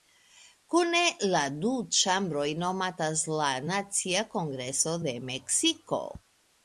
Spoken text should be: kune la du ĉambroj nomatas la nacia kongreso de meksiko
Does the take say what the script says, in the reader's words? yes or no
yes